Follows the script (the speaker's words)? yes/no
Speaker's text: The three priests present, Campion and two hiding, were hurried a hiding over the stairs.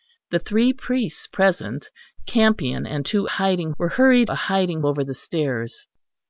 yes